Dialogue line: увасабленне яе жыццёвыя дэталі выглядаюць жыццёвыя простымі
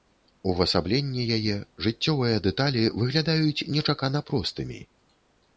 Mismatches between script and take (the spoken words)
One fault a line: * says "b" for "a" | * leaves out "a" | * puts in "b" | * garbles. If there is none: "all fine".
* says "нечакана" for "жыццёвыя"